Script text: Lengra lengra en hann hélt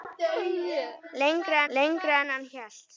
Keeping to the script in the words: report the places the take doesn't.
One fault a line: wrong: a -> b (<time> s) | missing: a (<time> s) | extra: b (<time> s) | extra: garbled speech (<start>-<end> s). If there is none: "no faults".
no faults